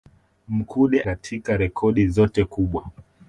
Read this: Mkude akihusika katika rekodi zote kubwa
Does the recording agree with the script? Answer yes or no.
no